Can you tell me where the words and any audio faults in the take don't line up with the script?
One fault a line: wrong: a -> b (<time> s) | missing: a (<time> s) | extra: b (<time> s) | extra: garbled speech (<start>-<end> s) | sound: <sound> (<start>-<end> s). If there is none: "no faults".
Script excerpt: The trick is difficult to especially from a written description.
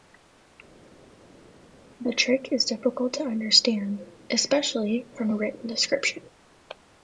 extra: understand (3.2 s)